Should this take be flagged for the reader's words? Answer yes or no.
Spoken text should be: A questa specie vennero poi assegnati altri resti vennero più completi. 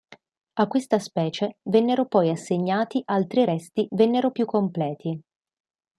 no